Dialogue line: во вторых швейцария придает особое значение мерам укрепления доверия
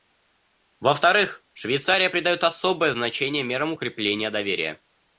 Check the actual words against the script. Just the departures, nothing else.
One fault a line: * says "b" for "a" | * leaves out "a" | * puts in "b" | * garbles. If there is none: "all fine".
all fine